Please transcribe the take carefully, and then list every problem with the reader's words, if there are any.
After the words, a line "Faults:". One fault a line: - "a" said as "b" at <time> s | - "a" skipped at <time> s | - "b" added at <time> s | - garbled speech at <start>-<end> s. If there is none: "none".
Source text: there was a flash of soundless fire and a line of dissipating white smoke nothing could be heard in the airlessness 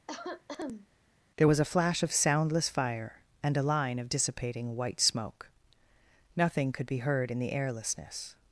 there was a flash of soundless fire and a line of dissipating white smoke nothing could be heard in the airlessness
Faults:
none